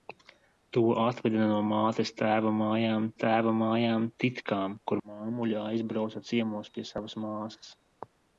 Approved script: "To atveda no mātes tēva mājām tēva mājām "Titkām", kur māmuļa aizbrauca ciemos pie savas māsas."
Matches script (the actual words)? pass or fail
pass